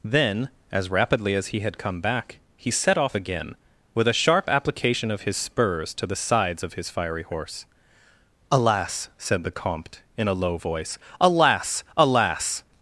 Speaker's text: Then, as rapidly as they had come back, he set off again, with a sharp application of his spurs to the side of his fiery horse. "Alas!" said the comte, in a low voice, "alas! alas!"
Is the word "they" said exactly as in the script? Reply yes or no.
no